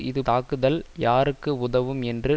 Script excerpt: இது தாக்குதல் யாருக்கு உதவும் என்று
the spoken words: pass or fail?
pass